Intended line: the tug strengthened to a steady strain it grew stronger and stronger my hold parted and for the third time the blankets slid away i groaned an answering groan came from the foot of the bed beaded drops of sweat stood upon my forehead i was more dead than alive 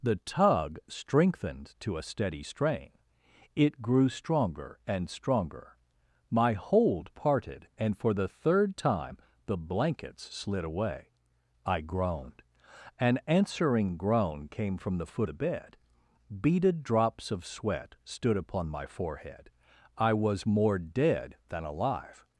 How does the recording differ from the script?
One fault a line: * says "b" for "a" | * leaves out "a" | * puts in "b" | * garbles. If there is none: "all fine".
* leaves out "of"